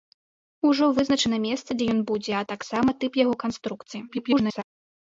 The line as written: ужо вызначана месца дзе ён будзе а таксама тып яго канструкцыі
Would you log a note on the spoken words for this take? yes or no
yes